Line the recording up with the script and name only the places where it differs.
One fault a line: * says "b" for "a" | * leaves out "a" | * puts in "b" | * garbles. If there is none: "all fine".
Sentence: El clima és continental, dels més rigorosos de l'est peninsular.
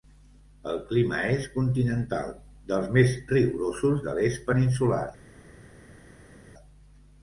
all fine